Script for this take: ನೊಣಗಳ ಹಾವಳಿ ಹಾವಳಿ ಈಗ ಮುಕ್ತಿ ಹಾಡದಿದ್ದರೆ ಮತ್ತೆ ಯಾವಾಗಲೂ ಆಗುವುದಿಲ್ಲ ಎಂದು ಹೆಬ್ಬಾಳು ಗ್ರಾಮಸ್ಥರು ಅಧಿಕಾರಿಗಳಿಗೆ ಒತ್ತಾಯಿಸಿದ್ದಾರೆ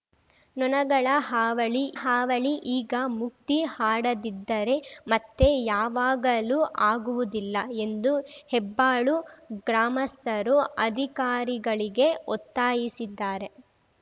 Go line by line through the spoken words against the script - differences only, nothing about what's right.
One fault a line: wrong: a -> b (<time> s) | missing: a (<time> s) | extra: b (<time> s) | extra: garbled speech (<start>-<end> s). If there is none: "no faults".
no faults